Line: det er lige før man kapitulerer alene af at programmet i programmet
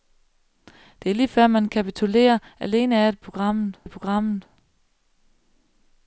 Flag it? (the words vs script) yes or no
no